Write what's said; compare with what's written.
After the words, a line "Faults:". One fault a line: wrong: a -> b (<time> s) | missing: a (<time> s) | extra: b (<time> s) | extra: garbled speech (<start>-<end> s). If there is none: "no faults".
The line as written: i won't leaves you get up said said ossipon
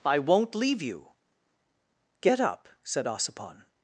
i won't leave you get up said ossipon
Faults:
wrong: leaves -> leave (0.5 s)
missing: said (3.1 s)